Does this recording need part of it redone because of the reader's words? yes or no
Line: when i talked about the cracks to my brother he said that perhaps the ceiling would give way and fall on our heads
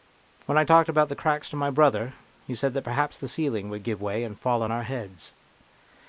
no